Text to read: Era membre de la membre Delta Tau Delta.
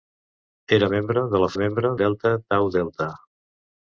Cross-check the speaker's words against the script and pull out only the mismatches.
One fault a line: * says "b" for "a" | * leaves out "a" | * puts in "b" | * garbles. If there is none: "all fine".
all fine